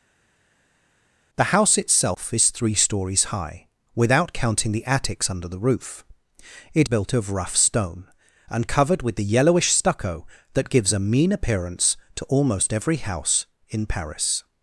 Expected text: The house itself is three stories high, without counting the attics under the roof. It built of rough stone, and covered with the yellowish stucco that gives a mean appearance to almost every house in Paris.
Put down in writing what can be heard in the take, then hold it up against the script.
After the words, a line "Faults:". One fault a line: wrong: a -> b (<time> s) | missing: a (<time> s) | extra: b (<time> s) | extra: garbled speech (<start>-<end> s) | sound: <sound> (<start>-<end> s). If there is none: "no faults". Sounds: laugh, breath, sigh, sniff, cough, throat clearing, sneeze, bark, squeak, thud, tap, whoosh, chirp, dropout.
The house itself is three stories high, without counting the attics under the roof. It built of rough stone, and covered with the yellowish stucco that gives a mean appearance to almost every house in Paris.
Faults:
no faults